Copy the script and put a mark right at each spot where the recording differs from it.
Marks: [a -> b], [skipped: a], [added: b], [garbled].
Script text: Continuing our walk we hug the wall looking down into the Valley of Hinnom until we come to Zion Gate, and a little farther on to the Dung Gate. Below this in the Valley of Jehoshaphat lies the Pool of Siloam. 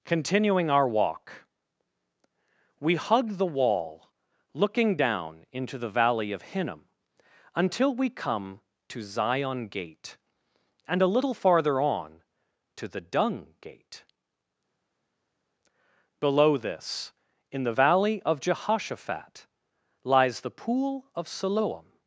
Continuing our walk we hug the wall looking down into the Valley of Hinnom until we come to Zion Gate, and a little farther on to the Dung Gate. Below this in the Valley of Jehoshaphat lies the Pool of Siloam.